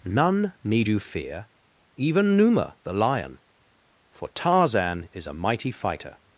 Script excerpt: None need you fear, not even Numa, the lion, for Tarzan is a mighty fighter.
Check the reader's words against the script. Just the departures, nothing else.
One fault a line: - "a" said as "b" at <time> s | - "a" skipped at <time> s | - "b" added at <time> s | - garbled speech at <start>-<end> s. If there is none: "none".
- "not" skipped at 1.5 s